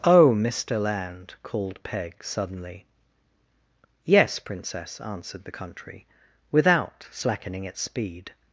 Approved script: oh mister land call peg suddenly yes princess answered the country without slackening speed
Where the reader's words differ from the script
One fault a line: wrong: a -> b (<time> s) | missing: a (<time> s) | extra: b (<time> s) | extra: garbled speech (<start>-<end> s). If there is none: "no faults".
wrong: call -> called (1.4 s)
extra: its (7.6 s)